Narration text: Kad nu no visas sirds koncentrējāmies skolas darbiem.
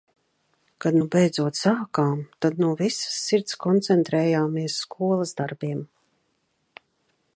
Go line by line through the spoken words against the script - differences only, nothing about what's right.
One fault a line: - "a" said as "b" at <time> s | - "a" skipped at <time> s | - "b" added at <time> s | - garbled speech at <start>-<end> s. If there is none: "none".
- "beidzot sākām tad" added at 1.1 s